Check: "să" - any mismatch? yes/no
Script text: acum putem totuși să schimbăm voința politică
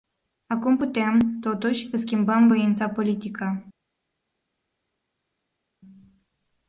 yes